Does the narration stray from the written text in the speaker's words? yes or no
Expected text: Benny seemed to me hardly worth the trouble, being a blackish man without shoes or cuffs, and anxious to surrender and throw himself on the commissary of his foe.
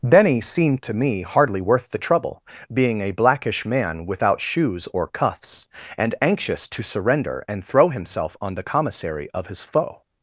no